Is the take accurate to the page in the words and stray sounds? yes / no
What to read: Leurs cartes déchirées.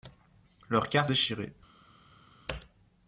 yes